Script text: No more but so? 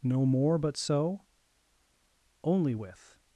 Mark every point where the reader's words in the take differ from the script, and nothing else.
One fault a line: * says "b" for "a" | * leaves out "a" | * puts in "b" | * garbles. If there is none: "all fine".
* puts in "Only with"